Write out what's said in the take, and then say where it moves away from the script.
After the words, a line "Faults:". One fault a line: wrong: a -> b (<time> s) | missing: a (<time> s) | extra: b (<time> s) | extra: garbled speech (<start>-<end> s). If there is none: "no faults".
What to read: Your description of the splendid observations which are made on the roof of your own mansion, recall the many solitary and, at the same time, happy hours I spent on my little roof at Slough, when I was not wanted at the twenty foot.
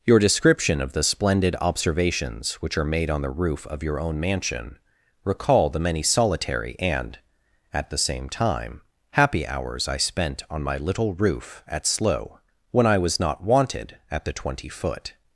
Your description of the splendid observations which are made on the roof of your own mansion, recall the many solitary and, at the same time, happy hours I spent on my little roof at Slough, when I was not wanted at the twenty foot.
Faults:
no faults